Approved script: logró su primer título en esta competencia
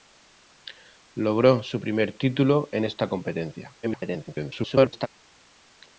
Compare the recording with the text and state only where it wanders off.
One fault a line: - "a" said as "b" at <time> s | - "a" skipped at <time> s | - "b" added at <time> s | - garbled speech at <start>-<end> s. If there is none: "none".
- garbled speech at 3.8-5.1 s